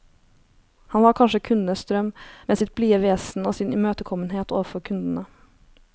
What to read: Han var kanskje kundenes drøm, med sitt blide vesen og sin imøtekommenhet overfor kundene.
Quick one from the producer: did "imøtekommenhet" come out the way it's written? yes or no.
yes